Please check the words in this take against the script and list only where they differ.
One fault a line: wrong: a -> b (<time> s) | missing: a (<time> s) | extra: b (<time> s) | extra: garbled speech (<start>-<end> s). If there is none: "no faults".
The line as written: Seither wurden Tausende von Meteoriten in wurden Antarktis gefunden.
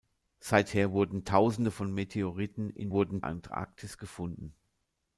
no faults